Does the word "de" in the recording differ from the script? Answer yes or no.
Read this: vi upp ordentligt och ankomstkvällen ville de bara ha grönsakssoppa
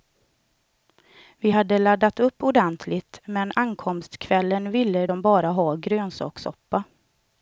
no